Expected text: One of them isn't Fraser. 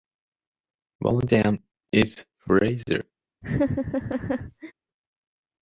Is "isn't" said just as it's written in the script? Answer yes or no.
no